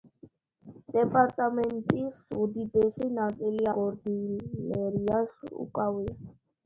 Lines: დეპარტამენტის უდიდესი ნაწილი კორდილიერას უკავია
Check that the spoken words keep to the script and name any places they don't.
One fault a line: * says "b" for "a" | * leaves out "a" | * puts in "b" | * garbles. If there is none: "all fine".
all fine